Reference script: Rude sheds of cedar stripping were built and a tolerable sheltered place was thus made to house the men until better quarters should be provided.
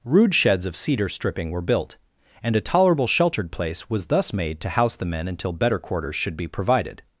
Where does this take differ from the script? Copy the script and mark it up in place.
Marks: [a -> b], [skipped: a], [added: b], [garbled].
Rude sheds of cedar stripping were built and a tolerable sheltered place was thus made to house the men until better quarters should be provided.